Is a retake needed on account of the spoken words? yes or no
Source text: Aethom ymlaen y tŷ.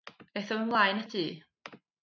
no